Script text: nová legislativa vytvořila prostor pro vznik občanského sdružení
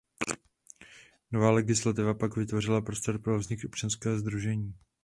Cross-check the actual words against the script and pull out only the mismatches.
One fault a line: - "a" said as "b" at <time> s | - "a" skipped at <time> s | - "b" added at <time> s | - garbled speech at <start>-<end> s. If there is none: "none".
- "pak" added at 2.1 s